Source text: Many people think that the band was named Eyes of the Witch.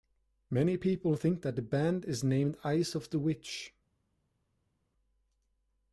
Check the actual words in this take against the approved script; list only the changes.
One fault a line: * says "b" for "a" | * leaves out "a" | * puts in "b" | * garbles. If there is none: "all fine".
* says "is" for "was"